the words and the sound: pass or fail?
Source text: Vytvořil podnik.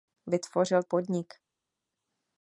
pass